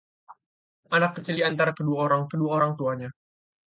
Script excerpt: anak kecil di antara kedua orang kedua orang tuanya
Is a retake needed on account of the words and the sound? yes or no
no